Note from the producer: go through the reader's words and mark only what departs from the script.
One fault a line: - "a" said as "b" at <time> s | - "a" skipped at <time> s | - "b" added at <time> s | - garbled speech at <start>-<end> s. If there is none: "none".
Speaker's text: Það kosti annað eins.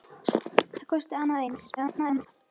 - garbled speech at 1.8-2.3 s